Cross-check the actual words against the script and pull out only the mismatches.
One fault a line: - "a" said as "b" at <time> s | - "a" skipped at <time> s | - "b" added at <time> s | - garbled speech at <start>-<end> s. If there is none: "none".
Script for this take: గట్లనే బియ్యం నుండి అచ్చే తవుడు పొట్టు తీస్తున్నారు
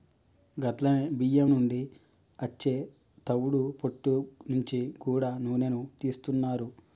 - "నుంచి గూడా నూనెను" added at 4.5 s